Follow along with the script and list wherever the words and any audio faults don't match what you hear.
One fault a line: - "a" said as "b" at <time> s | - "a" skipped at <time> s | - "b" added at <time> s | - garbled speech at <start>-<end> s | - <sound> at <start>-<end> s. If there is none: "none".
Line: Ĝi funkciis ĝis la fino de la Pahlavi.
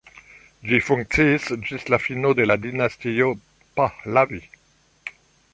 - "dinastio" added at 2.7 s